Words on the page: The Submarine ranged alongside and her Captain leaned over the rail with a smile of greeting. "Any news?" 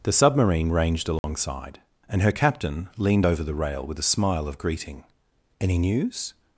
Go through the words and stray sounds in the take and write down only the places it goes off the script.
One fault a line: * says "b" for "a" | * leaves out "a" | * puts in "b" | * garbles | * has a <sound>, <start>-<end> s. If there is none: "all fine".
* has a dropout, 1.2-1.2 s